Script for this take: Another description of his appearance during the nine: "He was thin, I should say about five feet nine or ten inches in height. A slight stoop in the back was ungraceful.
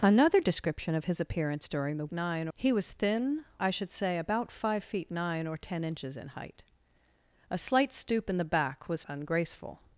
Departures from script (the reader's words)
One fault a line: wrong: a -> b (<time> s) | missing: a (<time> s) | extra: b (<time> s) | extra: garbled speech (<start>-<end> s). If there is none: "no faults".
no faults